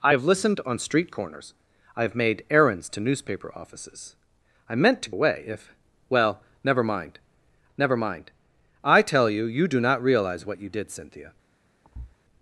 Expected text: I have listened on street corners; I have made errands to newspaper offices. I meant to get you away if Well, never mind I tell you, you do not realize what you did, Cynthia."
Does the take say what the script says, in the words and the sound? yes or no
no